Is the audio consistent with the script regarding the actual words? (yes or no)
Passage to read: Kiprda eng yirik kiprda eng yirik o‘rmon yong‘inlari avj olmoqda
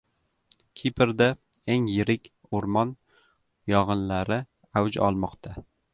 no